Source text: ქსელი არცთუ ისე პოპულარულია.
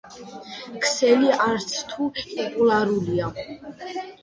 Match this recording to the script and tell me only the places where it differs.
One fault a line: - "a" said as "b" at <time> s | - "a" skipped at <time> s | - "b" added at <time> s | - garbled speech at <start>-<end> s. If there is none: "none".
- "ისე" skipped at 2.1 s